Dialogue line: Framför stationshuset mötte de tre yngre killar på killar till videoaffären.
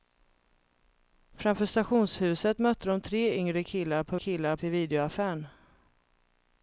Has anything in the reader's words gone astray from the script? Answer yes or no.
no